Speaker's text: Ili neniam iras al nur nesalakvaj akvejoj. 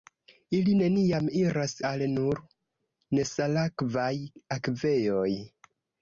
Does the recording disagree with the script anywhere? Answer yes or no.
no